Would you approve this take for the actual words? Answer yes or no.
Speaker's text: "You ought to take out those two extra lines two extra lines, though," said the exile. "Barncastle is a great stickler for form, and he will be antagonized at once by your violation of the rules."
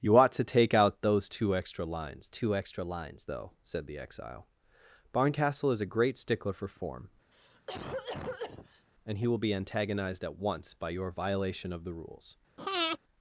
yes